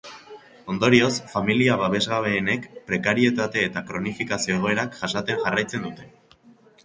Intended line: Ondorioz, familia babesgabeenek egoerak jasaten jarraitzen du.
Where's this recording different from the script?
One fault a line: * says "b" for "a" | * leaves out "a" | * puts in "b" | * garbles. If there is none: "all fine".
* puts in "prekarietate eta kronifikazio"
* says "dute" for "du"